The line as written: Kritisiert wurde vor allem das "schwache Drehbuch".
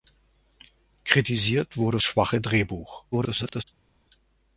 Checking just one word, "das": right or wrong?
wrong